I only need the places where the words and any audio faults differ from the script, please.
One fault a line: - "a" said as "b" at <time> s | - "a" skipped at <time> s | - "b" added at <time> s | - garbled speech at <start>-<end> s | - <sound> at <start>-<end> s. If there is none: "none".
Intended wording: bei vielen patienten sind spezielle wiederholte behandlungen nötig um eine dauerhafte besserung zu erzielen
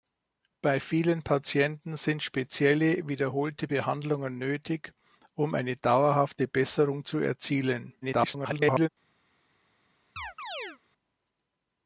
- garbled speech at 8.0-8.9 s
- chirp at 10.2-10.8 s